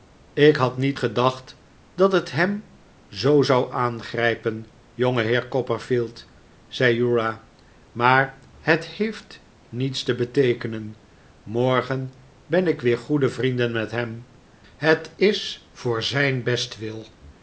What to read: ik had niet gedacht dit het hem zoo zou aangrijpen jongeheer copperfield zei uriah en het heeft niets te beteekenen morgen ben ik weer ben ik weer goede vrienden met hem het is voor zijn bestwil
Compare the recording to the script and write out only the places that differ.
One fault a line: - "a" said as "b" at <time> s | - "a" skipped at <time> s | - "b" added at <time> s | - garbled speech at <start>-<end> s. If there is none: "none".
- "dit" said as "dat" at 1.9 s
- "en" said as "maar" at 7.9 s
- "ben ik weer" skipped at 13.0 s